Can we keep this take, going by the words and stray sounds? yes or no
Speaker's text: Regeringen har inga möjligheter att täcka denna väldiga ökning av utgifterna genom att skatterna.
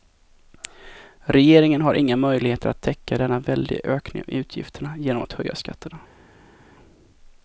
no